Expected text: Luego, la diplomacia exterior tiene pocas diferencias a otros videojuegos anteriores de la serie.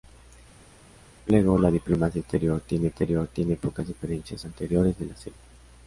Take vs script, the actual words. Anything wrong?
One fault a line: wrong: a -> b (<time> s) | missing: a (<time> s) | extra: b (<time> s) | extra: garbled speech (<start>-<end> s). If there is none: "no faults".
extra: exterior tiene (2.9 s)
missing: a otros videojuegos (4.4 s)